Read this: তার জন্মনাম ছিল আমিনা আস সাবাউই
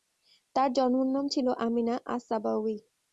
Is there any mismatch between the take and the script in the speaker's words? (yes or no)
no